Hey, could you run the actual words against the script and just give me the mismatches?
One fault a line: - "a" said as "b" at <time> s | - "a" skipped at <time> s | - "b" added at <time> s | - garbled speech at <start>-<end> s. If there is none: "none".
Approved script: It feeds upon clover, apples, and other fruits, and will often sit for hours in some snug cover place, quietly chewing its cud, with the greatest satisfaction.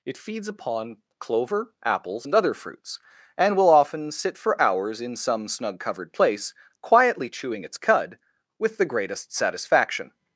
- "cover" said as "covered" at 5.8 s